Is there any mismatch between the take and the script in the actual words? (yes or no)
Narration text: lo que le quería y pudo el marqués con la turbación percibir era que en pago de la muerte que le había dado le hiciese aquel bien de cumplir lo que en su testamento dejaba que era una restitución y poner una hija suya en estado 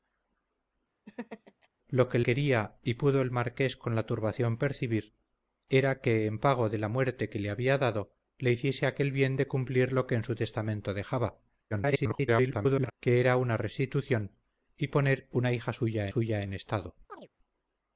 yes